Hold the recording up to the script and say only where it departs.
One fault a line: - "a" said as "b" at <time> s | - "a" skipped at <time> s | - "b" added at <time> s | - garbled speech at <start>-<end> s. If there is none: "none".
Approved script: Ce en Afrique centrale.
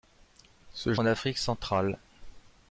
none